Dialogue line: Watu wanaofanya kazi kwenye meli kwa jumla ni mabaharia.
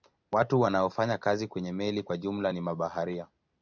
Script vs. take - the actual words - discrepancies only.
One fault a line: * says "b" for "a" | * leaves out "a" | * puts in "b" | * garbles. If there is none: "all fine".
all fine